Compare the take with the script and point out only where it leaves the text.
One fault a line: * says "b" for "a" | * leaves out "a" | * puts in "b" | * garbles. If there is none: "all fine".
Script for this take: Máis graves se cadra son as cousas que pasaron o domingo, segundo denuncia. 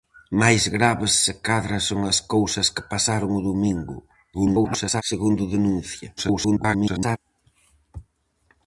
* garbles
* garbles